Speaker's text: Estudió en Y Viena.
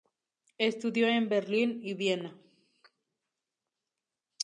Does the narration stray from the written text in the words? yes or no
yes